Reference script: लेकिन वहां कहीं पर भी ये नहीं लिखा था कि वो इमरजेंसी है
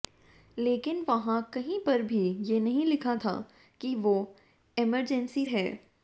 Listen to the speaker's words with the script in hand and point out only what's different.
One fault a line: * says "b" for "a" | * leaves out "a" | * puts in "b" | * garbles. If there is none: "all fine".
all fine